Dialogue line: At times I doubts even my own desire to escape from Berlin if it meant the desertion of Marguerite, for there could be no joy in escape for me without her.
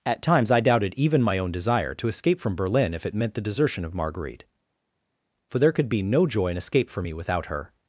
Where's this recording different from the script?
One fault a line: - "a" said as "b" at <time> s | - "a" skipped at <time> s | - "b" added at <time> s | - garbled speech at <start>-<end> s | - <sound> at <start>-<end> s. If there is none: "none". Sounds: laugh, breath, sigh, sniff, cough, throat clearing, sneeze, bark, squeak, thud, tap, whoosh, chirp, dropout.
- "doubts" said as "doubted" at 0.6 s